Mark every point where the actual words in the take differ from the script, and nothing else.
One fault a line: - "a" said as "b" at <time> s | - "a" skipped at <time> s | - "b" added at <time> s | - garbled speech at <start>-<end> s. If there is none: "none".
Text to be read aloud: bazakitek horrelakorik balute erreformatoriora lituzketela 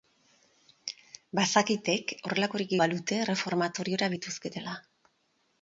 none